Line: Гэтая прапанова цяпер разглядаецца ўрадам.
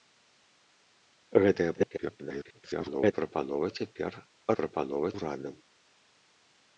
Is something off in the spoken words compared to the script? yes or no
yes